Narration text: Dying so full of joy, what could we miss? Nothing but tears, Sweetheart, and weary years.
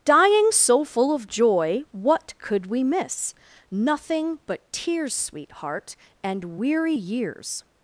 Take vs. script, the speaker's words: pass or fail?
pass